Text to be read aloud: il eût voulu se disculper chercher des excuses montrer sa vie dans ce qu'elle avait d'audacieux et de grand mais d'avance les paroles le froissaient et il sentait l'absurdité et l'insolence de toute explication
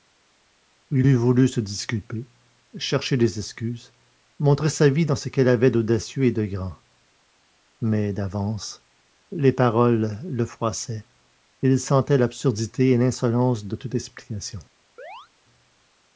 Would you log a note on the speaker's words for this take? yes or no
no